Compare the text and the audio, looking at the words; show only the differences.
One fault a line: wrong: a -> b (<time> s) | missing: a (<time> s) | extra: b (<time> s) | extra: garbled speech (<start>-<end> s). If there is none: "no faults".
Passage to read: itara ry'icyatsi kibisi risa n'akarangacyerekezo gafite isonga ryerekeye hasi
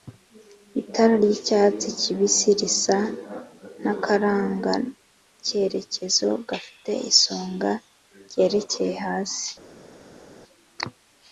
no faults